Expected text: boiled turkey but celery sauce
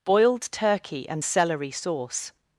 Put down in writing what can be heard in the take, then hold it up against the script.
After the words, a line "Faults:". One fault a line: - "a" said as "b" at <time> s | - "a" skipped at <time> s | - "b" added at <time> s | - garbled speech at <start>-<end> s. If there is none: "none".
boiled turkey and celery sauce
Faults:
- "but" said as "and" at 1.1 s